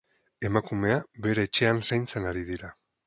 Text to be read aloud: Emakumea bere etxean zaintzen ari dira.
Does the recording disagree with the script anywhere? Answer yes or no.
no